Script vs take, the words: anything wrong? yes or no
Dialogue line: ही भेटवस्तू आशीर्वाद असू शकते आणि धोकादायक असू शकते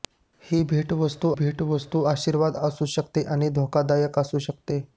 yes